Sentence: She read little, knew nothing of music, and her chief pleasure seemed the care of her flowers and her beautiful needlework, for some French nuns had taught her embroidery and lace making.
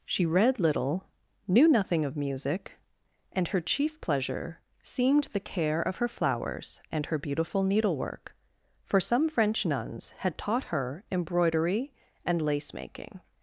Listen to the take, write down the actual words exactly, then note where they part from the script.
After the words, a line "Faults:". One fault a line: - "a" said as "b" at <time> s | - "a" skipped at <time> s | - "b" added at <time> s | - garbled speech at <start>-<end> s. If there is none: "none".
She read little, knew nothing of music, and her chief pleasure seemed the care of her flowers and her beautiful needlework, for some French nuns had taught her embroidery and lace making.
Faults:
none